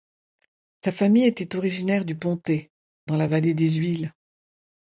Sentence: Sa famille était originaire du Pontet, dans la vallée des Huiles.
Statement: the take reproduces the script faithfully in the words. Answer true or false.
true